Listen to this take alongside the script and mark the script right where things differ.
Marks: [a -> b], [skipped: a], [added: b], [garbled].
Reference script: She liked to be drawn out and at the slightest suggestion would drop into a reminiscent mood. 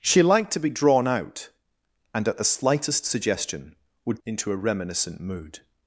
She liked to be drawn out and at the slightest suggestion would [skipped: drop] into a reminiscent mood.